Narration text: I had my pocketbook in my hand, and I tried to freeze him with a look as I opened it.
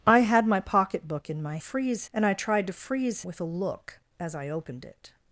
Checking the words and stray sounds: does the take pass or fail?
fail